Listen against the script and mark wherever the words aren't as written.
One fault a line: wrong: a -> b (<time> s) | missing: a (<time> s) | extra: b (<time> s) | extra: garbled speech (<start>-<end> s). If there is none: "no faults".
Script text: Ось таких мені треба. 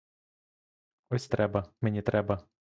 wrong: таких -> треба (1.3 s)